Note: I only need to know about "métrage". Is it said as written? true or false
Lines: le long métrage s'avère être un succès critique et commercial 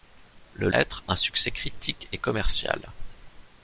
false